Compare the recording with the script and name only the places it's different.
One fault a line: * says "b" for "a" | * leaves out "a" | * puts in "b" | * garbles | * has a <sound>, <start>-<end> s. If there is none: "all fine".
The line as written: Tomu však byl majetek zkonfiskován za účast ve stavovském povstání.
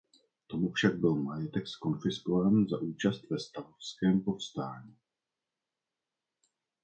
all fine